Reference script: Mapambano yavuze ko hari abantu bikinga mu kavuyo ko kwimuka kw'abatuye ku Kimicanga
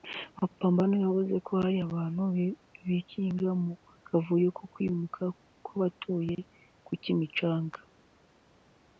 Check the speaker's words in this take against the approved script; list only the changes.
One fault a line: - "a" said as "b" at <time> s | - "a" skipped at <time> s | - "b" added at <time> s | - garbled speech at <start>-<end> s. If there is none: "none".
none